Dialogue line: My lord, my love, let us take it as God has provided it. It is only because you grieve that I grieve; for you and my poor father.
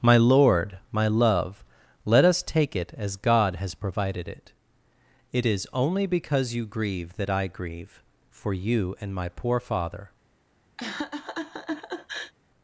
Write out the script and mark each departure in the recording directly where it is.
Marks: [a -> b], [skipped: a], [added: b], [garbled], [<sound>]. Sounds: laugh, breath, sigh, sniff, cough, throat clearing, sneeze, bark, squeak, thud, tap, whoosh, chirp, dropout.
My lord, my love, let us take it as God has provided it. It is only because you grieve that I grieve; for you and my poor father. [laugh]